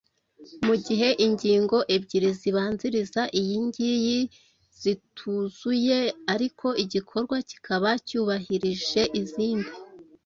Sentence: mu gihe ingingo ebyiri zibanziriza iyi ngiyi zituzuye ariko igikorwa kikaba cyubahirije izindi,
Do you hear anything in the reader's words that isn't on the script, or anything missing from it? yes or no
no